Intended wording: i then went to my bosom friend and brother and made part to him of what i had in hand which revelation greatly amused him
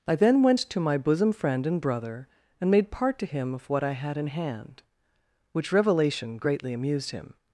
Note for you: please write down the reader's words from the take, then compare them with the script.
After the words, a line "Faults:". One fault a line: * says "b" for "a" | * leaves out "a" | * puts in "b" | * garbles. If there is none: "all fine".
i then went to my bosom friend and brother and made part to him of what i had in hand which revelation greatly amused him
Faults:
all fine